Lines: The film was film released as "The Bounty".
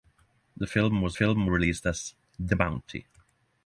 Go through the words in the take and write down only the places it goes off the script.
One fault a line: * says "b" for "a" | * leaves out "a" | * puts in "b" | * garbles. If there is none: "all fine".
all fine